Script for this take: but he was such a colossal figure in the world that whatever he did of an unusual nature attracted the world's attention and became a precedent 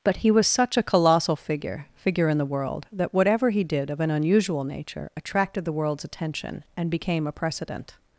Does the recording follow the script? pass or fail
fail